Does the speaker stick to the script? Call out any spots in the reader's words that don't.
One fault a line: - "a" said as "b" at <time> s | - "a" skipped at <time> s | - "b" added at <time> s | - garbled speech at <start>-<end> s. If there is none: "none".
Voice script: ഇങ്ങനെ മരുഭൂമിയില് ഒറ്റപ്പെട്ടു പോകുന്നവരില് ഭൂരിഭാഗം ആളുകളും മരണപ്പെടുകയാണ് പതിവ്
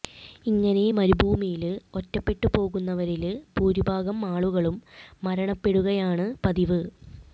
none